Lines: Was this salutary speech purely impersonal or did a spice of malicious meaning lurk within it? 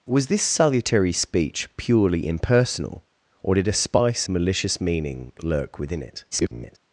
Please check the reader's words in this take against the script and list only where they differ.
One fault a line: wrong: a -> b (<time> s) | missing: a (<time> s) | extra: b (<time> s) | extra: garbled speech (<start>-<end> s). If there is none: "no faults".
missing: of (4.3 s)
extra: garbled speech (6.3-6.8 s)